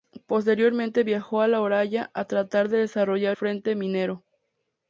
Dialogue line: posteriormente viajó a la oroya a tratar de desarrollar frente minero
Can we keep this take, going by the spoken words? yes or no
yes